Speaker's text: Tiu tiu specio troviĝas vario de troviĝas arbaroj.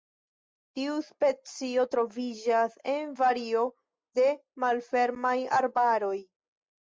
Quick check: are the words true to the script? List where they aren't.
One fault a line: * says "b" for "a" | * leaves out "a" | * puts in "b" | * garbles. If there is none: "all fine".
* leaves out "tiu"
* puts in "en"
* says "malfermaj" for "troviĝas"